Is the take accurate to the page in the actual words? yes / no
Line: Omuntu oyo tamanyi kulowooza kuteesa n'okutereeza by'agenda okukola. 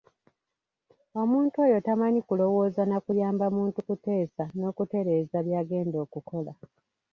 no